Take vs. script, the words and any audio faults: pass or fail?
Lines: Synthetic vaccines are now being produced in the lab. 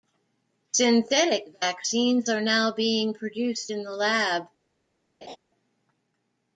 fail